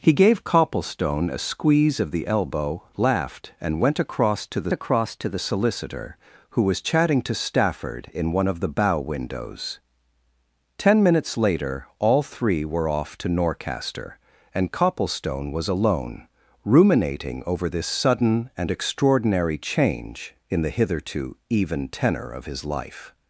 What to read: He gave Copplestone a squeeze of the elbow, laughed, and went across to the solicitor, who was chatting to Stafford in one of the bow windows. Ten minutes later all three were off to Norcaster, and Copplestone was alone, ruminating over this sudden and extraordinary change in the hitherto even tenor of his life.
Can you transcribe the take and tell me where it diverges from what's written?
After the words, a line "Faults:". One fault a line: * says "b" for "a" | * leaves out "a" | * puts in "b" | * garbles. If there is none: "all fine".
He gave Copplestone a squeeze of the elbow, laughed, and went across to the across to the solicitor, who was chatting to Stafford in one of the bow windows. Ten minutes later all three were off to Norcaster, and Copplestone was alone, ruminating over this sudden and extraordinary change in the hitherto even tenor of his life.
Faults:
* puts in "across to the"